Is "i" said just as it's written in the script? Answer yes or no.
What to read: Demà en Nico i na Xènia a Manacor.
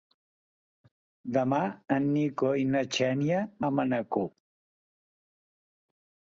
yes